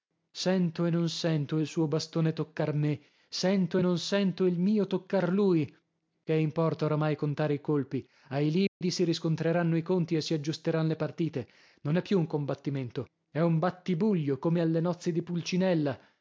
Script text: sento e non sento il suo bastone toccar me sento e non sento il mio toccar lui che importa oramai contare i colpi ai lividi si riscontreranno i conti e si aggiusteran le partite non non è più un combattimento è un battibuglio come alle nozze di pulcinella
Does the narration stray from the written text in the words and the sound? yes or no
yes